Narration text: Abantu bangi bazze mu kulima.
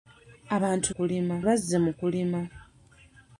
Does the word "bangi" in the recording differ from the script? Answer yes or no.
yes